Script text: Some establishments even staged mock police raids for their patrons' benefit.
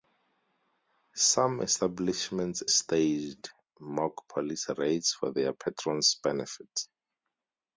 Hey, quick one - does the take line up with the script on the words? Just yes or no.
no